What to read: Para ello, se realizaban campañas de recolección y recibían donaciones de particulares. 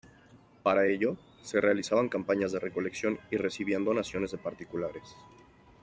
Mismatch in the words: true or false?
false